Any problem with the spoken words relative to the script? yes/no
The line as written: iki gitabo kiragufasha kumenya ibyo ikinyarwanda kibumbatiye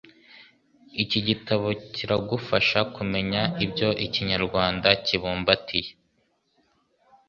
no